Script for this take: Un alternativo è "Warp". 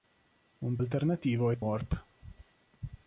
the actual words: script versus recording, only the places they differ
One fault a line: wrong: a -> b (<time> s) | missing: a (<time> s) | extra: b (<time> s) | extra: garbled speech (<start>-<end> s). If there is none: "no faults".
no faults